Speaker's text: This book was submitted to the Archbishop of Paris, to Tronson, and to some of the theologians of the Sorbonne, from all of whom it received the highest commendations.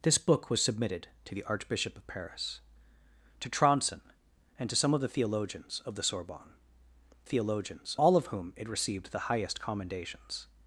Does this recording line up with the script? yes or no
no